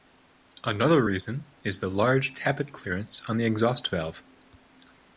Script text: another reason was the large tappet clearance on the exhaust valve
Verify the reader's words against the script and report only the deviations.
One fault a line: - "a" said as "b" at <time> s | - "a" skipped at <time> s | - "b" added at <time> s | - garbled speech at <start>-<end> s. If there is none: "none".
- "was" said as "is" at 1.6 s